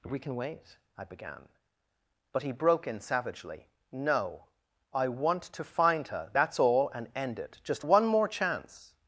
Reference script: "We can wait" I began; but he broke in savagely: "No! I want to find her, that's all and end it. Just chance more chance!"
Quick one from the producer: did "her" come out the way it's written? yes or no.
yes